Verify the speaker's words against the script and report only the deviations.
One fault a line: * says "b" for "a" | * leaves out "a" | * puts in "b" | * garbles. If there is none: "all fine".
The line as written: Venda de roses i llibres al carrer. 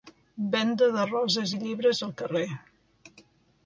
all fine